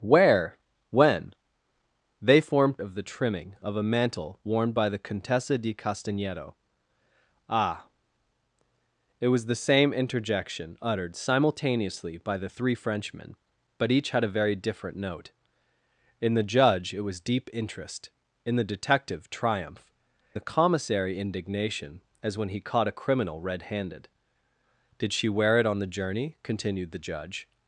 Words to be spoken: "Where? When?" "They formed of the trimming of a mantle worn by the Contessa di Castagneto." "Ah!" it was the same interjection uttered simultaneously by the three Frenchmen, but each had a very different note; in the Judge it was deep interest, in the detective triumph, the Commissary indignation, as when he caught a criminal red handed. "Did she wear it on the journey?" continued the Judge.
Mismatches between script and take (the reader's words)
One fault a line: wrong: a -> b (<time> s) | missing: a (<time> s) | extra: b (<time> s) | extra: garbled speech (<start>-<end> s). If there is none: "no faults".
no faults